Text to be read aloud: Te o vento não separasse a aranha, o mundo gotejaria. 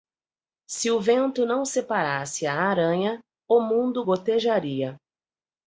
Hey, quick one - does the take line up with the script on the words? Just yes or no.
no